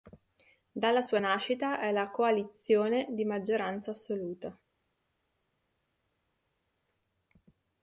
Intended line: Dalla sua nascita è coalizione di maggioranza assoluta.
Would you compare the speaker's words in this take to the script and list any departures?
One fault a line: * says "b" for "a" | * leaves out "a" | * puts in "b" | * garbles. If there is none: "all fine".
* puts in "la"